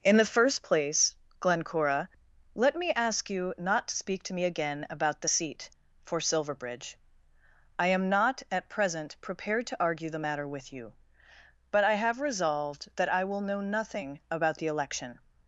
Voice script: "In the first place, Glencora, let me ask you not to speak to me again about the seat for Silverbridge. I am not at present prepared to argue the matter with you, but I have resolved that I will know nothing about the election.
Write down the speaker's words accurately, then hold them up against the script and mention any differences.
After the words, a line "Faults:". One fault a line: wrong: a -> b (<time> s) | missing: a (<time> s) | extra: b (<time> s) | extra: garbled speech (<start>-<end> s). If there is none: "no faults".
"In the first place, Glencora, let me ask you not to speak to me again about the seat for Silverbridge. I am not at present prepared to argue the matter with you, but I have resolved that I will know nothing about the election.
Faults:
no faults